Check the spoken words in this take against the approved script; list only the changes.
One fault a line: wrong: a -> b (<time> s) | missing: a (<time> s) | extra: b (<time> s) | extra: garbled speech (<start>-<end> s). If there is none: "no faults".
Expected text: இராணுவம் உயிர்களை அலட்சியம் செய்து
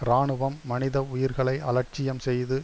extra: மனித (0.6 s)